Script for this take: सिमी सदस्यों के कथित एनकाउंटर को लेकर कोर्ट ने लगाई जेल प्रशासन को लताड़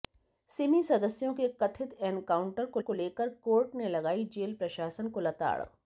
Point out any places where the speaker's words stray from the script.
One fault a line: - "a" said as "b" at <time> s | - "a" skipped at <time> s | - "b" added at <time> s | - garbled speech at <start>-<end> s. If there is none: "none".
- "को" added at 2.8 s